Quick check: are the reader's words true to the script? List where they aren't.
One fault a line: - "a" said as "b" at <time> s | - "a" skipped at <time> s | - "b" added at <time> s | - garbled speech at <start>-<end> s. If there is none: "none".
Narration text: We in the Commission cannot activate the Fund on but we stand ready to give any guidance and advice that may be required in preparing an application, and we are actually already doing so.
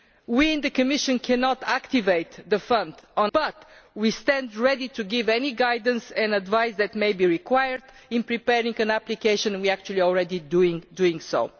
none